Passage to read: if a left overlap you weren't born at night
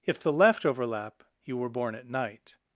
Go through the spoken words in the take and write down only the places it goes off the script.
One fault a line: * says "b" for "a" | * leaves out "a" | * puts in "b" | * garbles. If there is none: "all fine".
* says "the" for "a"
* says "were" for "weren't"